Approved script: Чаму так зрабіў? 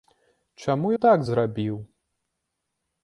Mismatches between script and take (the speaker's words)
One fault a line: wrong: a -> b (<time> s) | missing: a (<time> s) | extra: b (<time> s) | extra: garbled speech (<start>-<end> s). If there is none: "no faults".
no faults